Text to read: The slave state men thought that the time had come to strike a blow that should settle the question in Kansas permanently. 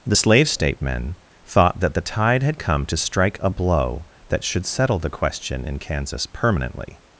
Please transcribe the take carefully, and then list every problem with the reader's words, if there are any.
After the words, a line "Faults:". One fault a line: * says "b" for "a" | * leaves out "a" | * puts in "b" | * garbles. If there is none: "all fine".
The slave state men thought that the tide had come to strike a blow that should settle the question in Kansas permanently.
Faults:
* says "tide" for "time"